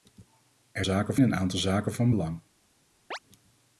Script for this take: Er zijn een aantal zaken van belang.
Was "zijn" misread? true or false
true